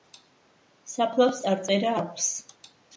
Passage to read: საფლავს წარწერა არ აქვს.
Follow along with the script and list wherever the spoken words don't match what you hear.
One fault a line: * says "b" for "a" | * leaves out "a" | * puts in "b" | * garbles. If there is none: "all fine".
* leaves out "არ"